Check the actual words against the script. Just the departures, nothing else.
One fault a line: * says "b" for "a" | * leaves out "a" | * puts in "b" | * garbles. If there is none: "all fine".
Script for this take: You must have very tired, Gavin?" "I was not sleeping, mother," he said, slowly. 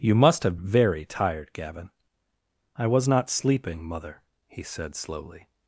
all fine